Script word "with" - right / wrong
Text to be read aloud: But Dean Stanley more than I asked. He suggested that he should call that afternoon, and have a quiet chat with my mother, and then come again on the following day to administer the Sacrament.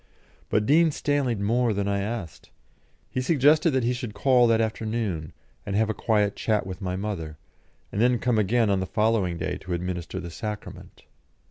right